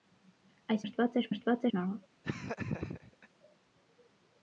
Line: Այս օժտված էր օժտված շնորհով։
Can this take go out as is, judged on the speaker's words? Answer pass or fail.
pass